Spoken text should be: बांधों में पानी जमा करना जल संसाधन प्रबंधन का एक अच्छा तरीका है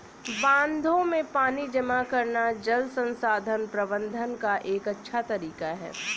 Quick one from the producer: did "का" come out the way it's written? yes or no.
yes